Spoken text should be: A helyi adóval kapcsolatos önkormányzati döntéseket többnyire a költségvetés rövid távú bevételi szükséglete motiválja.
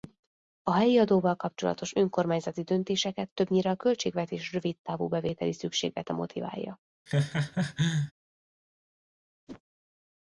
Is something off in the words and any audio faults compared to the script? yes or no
yes